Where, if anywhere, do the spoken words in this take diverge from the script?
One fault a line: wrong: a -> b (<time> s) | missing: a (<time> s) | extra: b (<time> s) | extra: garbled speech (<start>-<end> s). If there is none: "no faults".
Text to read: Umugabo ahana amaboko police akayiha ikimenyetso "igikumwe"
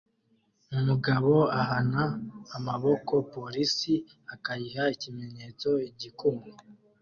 no faults